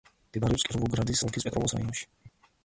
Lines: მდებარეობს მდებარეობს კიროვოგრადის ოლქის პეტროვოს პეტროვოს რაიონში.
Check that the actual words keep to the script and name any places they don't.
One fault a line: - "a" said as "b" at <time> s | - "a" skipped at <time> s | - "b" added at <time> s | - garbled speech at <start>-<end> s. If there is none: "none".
- "მდებარეობს" skipped at 0.6 s
- "პეტროვოს" skipped at 1.8 s